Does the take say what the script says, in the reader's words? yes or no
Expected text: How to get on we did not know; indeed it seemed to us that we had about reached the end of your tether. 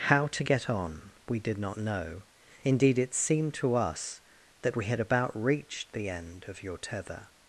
yes